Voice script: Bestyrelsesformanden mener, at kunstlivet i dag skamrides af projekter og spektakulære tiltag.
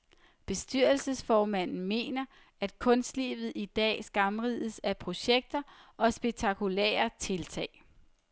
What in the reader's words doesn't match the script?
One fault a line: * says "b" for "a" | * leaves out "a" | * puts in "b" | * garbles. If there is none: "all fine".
all fine